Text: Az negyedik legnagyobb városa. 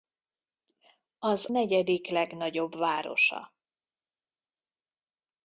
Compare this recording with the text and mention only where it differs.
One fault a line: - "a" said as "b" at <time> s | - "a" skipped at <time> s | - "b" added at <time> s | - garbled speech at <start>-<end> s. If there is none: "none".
none